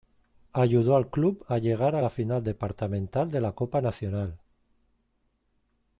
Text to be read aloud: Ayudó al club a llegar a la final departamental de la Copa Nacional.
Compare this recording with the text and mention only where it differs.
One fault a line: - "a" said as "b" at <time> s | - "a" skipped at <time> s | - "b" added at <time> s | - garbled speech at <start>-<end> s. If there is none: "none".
none